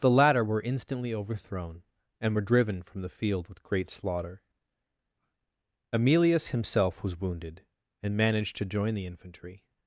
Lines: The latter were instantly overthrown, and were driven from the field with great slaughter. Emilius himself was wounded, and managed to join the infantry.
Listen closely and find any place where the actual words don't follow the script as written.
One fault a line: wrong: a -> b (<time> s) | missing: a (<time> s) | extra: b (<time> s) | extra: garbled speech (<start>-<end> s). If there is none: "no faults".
no faults